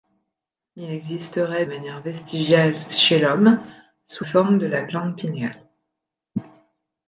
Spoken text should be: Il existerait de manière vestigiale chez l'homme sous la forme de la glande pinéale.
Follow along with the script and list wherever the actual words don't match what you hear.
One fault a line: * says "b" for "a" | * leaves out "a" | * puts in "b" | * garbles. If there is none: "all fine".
* leaves out "de"
* leaves out "la"